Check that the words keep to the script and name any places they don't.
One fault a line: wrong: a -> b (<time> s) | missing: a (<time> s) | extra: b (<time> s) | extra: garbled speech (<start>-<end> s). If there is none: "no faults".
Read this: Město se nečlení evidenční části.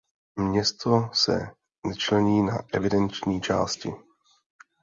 extra: na (2.4 s)